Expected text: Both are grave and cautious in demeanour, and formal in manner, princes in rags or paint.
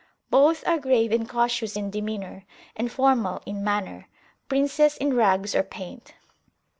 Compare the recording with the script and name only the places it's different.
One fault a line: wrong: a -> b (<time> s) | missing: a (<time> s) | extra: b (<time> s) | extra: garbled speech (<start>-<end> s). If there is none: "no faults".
no faults